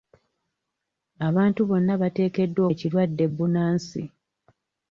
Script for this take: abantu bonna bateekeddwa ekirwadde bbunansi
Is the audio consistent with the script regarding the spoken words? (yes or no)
yes